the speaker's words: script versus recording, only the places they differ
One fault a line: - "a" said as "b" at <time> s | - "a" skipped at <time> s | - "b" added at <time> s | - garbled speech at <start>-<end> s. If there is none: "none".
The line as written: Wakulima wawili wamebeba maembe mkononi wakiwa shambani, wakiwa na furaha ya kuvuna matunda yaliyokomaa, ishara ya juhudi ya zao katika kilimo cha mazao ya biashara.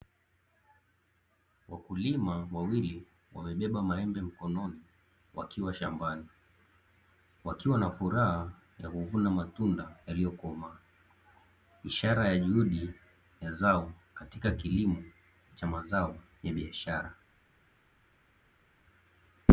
none